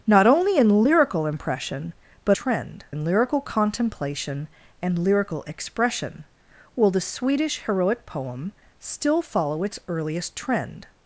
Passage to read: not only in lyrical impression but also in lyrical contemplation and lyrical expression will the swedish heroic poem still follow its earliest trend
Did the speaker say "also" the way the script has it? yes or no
no